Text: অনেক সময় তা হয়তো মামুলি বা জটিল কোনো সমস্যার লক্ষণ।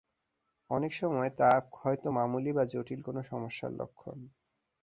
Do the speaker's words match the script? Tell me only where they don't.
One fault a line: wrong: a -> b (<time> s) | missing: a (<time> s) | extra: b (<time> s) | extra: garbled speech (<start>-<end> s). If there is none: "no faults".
no faults